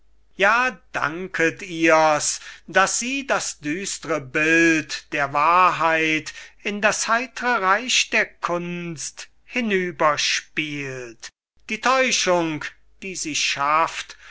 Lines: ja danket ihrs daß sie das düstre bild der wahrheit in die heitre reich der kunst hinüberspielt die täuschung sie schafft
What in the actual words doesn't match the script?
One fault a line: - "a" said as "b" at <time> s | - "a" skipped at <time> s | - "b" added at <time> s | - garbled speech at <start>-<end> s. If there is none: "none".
- "die" said as "das" at 6.8 s
- "die" added at 13.0 s